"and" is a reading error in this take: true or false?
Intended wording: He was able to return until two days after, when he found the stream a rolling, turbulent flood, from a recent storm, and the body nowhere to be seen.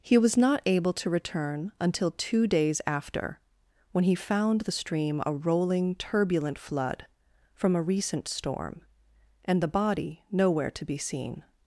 false